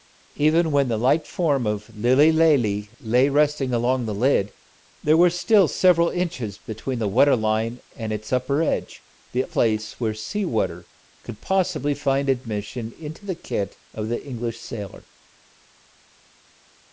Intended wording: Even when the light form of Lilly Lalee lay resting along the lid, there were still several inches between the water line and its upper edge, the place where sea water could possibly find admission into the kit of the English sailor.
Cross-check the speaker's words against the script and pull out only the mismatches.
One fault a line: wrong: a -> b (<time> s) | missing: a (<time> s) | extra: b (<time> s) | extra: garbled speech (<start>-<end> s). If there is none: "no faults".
no faults